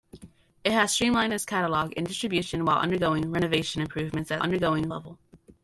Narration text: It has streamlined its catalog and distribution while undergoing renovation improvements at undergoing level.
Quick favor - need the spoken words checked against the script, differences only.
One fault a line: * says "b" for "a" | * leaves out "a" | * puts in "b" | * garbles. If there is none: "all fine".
all fine